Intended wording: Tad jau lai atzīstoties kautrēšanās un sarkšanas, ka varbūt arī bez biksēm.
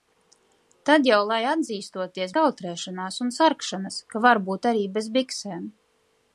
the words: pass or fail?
pass